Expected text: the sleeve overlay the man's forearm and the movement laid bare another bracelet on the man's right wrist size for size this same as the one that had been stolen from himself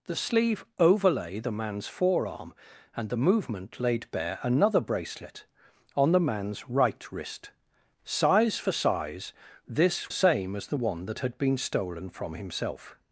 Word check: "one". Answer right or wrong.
right